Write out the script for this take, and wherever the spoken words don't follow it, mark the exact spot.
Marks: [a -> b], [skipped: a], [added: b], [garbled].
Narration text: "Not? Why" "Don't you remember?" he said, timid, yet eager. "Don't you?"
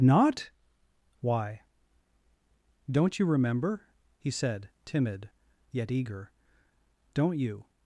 "Not? Why" "Don't you remember?" he said, timid, yet eager. "Don't you?"